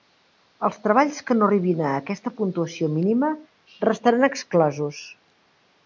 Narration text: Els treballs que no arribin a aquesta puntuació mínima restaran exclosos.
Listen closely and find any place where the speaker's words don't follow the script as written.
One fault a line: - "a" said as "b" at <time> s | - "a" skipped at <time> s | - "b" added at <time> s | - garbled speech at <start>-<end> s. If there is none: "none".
none